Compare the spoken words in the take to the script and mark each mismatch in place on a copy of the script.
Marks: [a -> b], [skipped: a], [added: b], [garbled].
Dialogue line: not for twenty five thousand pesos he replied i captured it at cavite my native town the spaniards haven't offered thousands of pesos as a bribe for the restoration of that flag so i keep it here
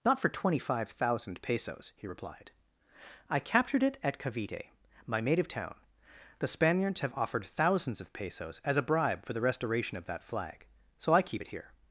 not for twenty five thousand pesos he replied i captured it at cavite my native town the spaniards [haven't -> have] offered thousands of pesos as a bribe for the restoration of that flag so i keep it here